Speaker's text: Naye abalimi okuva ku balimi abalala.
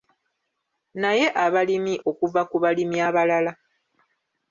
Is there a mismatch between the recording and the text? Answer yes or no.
no